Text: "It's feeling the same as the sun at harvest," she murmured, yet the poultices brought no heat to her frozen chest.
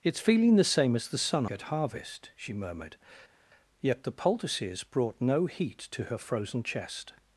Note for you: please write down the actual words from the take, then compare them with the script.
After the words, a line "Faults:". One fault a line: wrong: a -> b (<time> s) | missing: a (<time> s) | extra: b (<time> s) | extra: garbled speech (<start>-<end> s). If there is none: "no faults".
"It's feeling the same as the sun at harvest," she murmured, yet the poultices brought no heat to her frozen chest.
Faults:
no faults